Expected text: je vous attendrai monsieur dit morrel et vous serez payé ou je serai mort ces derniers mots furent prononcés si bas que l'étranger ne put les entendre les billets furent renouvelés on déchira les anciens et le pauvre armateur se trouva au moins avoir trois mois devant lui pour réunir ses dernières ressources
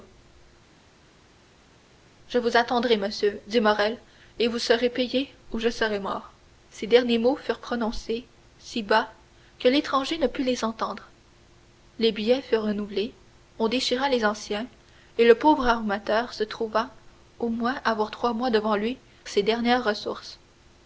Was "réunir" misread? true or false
true